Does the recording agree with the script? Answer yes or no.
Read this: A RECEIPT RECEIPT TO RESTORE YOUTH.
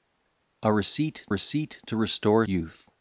yes